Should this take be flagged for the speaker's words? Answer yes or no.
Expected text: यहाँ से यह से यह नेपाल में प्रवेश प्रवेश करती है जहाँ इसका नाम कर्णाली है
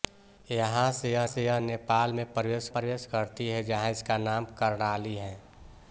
no